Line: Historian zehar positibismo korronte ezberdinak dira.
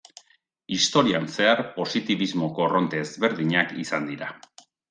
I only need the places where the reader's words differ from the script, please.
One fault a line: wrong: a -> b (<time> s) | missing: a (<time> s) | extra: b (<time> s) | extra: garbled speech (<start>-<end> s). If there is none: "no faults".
extra: izan (3.8 s)